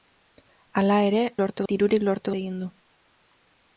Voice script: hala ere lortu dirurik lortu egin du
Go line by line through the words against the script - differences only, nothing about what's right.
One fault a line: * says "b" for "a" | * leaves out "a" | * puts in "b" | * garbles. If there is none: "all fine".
all fine